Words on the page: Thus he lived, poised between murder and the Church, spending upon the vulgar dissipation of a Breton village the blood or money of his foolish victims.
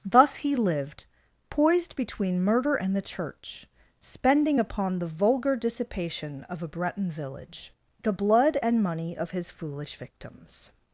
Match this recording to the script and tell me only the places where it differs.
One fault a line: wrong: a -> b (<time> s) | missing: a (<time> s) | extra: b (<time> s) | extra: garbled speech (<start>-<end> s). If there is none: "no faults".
wrong: or -> and (8.6 s)